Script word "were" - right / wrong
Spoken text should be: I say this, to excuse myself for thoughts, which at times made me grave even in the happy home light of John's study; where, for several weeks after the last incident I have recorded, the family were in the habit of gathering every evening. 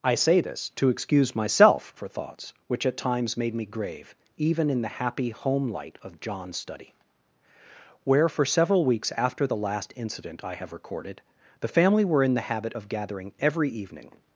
right